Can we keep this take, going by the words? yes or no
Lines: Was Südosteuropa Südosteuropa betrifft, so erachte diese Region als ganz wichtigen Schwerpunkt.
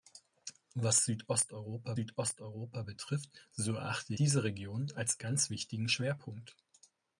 yes